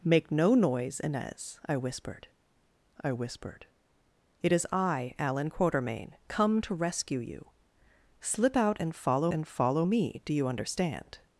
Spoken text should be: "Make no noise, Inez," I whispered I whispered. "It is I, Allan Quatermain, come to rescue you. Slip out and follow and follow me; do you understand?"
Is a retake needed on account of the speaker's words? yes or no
no